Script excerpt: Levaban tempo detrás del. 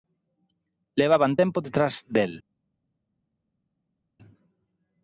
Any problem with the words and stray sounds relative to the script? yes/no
no